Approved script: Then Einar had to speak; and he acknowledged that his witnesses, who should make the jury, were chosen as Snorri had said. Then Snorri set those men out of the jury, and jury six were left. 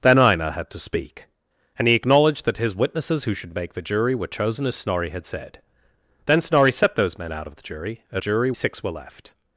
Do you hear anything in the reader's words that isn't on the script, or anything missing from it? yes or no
no